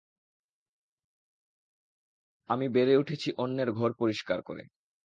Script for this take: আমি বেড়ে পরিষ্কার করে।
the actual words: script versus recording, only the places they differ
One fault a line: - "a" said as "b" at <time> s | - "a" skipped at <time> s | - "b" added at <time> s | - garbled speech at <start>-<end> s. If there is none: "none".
- "উঠেছি অন্যের ঘর" added at 3.0 s